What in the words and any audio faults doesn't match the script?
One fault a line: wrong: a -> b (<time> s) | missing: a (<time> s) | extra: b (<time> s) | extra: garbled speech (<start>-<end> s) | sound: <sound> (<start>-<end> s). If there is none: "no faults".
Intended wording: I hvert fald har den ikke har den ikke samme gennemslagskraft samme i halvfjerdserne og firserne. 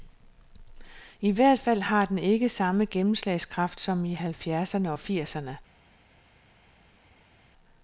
missing: har den ikke (2.5 s)
wrong: samme -> som (3.8 s)